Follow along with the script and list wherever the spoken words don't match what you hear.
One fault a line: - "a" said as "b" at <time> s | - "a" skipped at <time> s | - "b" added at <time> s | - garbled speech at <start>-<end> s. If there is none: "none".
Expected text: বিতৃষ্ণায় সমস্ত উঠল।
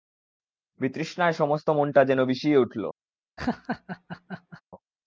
- "মনটা যেন বিষিয়ে" added at 1.7 s